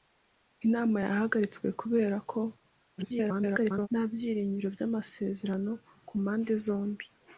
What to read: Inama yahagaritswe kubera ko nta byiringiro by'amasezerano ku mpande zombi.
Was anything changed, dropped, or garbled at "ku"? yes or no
no